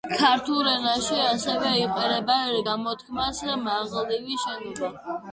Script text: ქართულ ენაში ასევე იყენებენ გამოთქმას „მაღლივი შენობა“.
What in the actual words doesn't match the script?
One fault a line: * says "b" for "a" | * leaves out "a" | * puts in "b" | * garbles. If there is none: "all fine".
all fine